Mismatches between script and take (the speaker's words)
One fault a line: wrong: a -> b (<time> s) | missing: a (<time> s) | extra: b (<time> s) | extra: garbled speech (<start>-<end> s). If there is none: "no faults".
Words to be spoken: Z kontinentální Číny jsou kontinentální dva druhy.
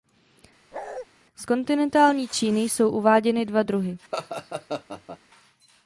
wrong: kontinentální -> uváděny (2.9 s)